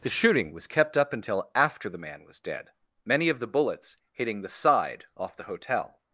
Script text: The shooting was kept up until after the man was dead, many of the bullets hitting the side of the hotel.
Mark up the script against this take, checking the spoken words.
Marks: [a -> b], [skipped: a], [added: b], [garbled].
The shooting was kept up until after the man was dead, many of the bullets hitting the side [of -> off] the hotel.